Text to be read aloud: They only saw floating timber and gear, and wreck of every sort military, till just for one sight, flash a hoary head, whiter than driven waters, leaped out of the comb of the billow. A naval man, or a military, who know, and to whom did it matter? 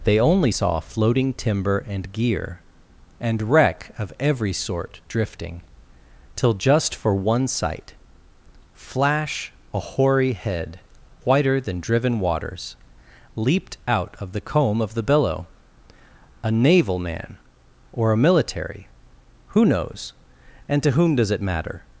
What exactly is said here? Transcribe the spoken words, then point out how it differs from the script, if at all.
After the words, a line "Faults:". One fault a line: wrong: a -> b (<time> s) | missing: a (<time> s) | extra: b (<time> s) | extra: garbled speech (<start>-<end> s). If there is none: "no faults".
They only saw floating timber and gear, and wreck of every sort drifting, till just for one sight, flash a hoary head, whiter than driven waters, leaped out of the comb of the billow. A naval man, or a military, who knows, and to whom does it matter?
Faults:
wrong: military -> drifting (5.1 s)
wrong: know -> knows (19.6 s)
wrong: did -> does (21.2 s)